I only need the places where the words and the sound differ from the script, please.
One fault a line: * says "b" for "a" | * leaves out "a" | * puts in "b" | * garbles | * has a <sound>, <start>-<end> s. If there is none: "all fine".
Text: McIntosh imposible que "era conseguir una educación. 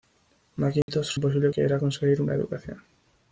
* has a dropout, 0.8-0.9 s